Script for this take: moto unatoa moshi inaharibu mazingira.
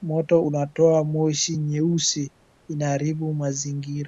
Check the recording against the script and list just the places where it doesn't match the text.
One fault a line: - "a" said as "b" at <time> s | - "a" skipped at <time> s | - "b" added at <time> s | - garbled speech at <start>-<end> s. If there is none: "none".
- "nyeusi" added at 1.6 s